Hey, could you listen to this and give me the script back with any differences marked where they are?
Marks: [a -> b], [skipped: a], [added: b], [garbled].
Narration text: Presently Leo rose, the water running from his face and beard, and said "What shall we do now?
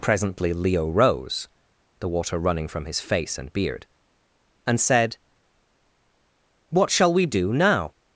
Presently Leo rose, the water running from his face and beard, and said "What shall we do now?